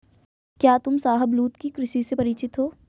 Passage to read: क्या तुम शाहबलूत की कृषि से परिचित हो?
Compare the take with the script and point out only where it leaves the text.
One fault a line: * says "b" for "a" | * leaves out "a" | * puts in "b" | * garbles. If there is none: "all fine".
all fine